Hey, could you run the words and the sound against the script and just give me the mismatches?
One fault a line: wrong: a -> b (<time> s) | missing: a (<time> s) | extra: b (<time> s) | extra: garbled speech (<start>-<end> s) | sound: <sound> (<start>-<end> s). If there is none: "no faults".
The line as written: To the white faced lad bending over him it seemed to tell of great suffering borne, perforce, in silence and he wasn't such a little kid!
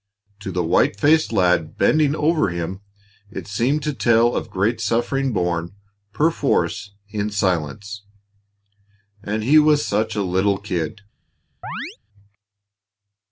wrong: wasn't -> was (9.6 s)
sound: chirp (11.6-12.0 s)